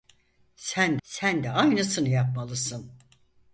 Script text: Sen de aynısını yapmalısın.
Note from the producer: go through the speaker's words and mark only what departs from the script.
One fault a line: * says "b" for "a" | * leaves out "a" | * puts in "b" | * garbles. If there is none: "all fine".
* puts in "sen"